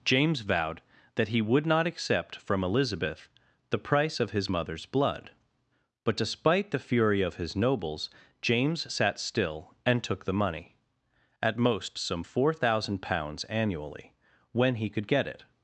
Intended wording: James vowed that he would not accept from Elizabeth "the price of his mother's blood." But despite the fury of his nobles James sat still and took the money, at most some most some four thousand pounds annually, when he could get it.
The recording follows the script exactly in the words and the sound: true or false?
false